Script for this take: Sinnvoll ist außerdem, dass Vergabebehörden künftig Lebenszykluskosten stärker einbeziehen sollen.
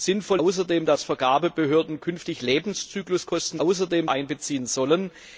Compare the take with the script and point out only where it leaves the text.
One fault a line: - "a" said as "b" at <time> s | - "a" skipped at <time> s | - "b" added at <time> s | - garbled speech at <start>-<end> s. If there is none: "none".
- "ist" skipped at 0.4 s
- "stärker" said as "außerdem" at 3.6 s